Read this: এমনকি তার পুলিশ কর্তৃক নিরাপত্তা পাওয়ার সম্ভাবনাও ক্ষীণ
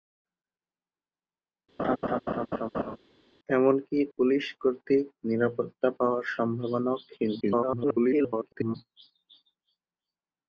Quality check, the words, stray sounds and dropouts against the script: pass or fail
fail